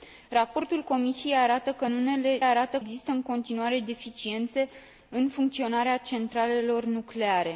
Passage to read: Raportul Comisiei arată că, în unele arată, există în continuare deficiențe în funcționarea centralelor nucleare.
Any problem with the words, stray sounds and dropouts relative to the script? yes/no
no